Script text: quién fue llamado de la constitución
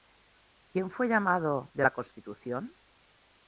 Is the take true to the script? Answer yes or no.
yes